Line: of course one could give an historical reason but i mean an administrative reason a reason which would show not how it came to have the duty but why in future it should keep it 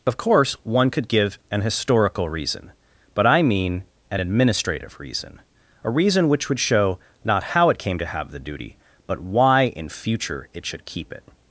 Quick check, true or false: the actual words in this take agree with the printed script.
true